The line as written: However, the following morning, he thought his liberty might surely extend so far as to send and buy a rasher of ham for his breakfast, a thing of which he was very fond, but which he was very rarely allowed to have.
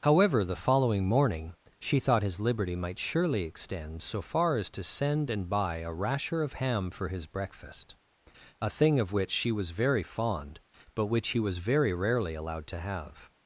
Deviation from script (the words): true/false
true